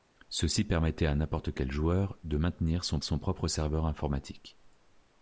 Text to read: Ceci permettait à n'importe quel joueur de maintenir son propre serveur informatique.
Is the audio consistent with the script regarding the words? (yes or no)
no